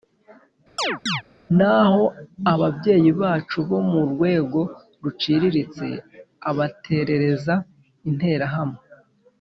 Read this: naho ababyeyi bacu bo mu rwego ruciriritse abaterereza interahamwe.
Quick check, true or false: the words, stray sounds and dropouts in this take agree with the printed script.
false